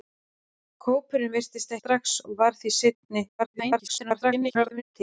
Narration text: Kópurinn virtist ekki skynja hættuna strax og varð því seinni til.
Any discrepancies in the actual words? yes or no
yes